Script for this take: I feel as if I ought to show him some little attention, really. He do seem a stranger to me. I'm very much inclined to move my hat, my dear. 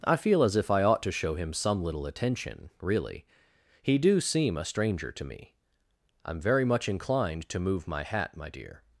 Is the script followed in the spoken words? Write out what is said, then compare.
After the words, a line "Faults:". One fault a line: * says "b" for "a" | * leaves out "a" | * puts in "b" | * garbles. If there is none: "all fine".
I feel as if I ought to show him some little attention, really. He do seem a stranger to me. I'm very much inclined to move my hat, my dear.
Faults:
all fine